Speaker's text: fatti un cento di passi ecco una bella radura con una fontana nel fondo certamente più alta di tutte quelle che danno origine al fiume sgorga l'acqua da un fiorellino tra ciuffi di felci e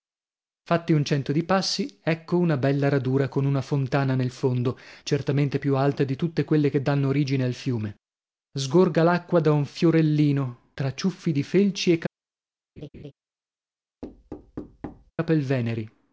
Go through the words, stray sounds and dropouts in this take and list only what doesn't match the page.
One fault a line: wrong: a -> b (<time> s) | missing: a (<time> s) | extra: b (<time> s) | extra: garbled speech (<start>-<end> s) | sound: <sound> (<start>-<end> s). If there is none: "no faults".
sound: laugh (12.8-13.1 s)
sound: thud (14.0-15.1 s)